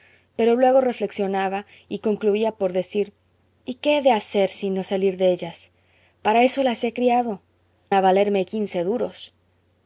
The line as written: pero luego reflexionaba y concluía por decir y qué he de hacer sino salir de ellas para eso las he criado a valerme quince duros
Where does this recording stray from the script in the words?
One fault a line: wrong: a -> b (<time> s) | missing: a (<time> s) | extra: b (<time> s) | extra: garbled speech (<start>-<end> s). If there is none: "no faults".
no faults